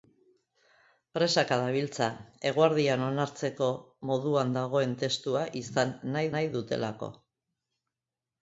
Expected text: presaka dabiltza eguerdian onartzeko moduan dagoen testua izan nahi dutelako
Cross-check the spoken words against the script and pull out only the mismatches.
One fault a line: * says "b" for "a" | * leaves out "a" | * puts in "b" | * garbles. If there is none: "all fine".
* puts in "nahi"